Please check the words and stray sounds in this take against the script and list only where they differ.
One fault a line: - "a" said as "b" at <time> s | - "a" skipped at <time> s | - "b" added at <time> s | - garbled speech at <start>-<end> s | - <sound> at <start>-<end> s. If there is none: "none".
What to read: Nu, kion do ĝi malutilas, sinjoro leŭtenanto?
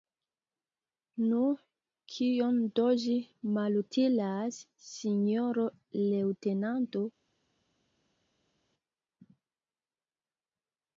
none